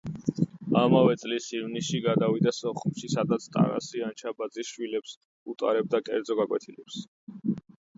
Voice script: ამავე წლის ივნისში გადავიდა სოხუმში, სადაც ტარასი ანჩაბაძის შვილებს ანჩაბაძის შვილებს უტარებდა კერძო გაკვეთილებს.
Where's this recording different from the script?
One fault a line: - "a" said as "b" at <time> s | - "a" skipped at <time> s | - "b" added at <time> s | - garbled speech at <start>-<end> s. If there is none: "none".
- "ანჩაბაძის შვილებს" skipped at 5.2 s